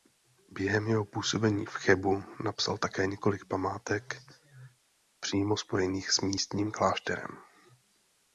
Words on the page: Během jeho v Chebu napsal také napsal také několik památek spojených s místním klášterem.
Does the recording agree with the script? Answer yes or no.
no